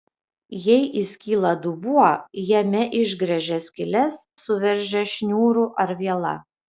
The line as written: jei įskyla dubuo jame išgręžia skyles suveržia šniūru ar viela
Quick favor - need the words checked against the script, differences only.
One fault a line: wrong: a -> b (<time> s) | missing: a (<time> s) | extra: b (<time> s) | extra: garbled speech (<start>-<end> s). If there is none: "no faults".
no faults